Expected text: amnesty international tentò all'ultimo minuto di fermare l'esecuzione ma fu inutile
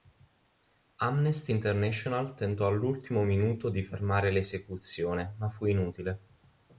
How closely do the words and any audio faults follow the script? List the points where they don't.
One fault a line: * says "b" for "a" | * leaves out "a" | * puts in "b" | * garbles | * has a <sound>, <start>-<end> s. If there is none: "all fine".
all fine